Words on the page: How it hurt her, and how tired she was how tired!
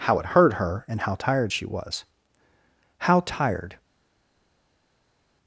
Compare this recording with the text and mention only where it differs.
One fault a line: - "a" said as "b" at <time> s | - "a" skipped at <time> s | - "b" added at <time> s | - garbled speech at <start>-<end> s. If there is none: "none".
none